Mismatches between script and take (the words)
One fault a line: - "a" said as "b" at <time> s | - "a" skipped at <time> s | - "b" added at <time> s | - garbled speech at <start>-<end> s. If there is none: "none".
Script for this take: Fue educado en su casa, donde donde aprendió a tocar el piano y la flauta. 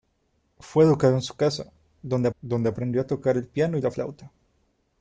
none